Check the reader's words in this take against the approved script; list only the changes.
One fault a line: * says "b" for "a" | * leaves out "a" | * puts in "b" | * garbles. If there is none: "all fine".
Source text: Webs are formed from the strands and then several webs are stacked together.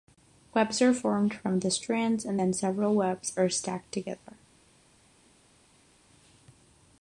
all fine